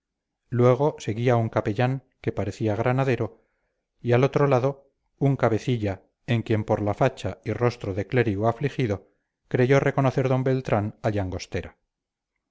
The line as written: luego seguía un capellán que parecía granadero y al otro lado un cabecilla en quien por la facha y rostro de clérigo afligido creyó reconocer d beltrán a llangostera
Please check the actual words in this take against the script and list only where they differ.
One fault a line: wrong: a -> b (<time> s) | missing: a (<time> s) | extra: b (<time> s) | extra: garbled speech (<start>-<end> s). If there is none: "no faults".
no faults